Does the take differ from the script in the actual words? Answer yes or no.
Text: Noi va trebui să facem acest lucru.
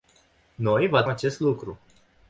yes